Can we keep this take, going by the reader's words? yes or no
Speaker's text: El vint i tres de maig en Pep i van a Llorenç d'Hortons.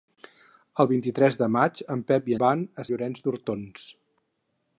yes